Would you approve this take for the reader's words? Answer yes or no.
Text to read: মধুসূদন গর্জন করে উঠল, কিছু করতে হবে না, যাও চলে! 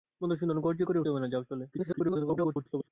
no